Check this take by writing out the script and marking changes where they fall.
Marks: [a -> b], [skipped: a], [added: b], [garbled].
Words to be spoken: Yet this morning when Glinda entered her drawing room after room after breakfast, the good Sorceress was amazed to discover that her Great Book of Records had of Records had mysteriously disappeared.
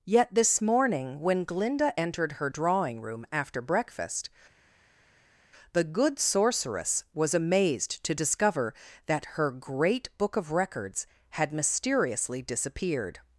Yet this morning when Glinda entered her drawing room after [skipped: room after] breakfast, the good Sorceress was amazed to discover that her Great Book of Records had [skipped: of Records had] mysteriously disappeared.